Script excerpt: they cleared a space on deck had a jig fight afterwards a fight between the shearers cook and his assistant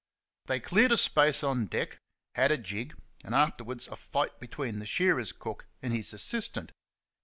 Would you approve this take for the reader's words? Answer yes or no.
no